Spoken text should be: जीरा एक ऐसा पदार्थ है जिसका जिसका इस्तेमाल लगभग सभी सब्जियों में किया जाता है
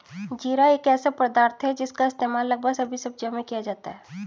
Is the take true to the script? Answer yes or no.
no